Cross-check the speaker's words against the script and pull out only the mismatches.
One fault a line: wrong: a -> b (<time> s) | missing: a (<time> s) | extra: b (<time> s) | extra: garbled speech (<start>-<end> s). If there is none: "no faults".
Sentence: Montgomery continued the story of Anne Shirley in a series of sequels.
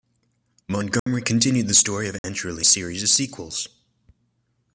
missing: in (2.6 s)